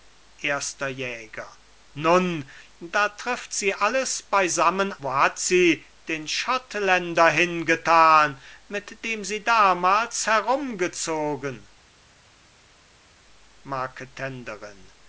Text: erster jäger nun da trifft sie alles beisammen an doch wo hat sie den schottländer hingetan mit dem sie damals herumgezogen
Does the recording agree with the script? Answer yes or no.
no